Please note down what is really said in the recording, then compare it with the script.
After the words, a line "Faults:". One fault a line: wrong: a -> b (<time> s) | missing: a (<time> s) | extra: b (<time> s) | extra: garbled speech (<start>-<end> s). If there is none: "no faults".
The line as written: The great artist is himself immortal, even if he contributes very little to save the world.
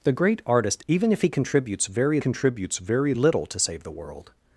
The great artist even if he contributes very contributes very little to save the world.
Faults:
missing: is himself immortal (0.8 s)
extra: contributes very (2.2 s)